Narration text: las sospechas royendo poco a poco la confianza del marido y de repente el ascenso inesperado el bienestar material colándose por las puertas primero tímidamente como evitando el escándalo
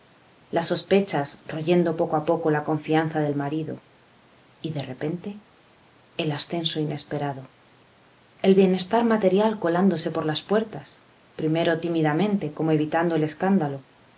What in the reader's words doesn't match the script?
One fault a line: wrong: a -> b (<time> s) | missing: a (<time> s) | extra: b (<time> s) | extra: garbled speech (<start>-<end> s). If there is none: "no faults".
no faults